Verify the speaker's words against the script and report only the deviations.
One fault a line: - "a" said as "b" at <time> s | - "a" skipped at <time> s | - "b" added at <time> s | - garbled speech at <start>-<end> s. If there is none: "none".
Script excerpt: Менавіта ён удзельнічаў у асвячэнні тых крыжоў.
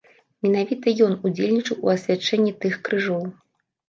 none